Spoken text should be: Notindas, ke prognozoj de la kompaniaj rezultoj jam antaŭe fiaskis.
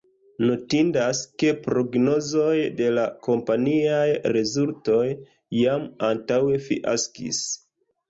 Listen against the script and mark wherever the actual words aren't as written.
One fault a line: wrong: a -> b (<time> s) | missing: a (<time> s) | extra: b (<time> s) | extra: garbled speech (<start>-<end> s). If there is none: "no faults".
no faults